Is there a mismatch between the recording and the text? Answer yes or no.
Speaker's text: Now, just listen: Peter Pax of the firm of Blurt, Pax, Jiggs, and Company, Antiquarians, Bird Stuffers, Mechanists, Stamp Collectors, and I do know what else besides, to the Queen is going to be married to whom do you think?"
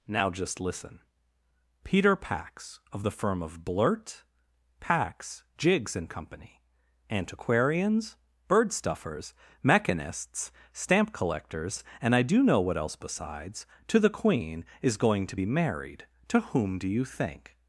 no